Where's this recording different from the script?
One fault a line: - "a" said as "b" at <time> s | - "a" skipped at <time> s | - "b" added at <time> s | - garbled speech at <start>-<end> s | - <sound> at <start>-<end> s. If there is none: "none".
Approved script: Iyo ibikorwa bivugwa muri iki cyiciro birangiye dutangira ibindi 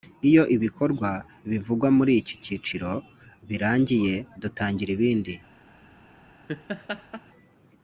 - laugh at 6.5-7.2 s